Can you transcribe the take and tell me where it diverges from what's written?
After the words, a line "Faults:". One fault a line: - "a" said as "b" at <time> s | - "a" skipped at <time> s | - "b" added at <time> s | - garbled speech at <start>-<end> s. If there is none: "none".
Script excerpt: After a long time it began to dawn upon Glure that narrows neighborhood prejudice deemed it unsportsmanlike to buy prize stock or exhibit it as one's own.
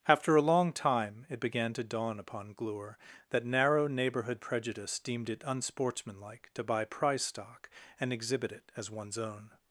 After a long time it began to dawn upon Glure that narrow neighborhood prejudice deemed it unsportsmanlike to buy prize stock and exhibit it as one's own.
Faults:
- "narrows" said as "narrow" at 3.5 s
- "or" said as "and" at 8.0 s